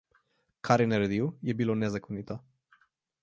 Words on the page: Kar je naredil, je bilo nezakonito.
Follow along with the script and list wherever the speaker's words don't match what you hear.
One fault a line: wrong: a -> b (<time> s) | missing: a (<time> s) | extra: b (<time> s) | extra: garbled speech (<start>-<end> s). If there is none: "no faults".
no faults